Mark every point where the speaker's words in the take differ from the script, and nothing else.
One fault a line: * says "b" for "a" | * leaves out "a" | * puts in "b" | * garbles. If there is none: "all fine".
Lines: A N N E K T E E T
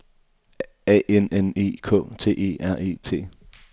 * puts in "R"